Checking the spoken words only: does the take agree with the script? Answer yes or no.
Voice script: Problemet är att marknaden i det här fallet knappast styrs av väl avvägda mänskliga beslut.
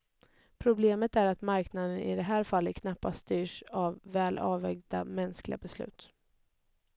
yes